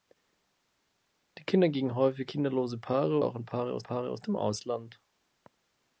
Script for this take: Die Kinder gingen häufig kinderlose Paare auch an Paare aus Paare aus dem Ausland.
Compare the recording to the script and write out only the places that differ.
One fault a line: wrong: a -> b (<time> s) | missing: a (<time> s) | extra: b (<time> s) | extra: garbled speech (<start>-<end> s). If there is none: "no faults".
no faults